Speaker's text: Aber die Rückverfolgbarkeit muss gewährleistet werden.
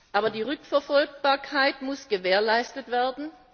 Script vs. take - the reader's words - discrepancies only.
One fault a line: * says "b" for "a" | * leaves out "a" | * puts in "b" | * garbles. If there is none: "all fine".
all fine